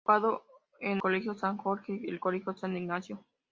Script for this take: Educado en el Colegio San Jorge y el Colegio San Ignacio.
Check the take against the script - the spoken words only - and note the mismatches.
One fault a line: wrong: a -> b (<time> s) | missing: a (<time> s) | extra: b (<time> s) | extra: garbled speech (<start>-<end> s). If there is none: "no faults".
missing: el (1.0 s)